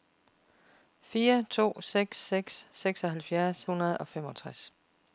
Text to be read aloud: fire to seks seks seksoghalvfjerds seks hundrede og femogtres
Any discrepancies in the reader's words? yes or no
yes